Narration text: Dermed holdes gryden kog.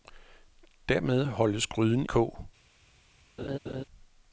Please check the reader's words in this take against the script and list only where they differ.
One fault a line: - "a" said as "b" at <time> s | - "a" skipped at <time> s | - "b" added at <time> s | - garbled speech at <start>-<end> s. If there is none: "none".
none